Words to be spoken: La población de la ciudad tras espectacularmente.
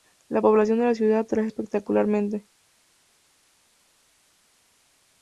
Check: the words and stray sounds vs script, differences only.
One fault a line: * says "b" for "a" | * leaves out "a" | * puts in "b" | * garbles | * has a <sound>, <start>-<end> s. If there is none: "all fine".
all fine